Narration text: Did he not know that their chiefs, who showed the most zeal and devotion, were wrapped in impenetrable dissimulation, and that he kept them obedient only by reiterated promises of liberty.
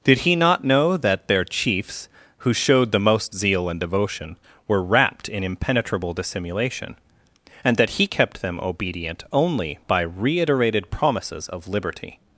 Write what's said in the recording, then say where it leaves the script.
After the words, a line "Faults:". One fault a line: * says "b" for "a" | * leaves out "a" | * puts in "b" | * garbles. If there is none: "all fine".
Did he not know that their chiefs, who showed the most zeal and devotion, were wrapped in impenetrable dissimulation, and that he kept them obedient only by reiterated promises of liberty.
Faults:
all fine